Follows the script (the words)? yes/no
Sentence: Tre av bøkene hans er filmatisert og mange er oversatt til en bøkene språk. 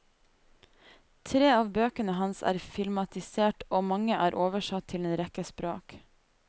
no